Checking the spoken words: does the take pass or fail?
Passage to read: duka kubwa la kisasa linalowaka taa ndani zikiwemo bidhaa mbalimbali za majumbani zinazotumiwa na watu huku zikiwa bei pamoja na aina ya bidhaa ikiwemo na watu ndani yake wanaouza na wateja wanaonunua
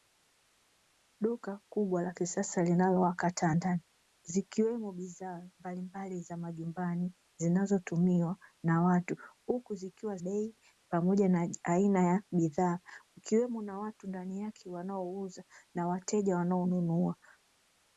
pass